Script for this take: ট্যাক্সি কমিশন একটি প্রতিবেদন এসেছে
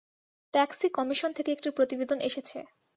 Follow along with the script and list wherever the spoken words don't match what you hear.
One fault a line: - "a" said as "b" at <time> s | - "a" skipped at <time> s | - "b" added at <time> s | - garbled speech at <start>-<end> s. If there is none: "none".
- "থেকে" added at 1.4 s